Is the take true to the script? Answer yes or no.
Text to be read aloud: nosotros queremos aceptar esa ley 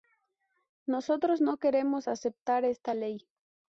no